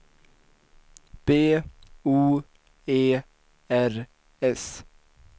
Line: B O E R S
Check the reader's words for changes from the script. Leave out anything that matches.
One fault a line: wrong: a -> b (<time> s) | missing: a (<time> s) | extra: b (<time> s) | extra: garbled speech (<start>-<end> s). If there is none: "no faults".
no faults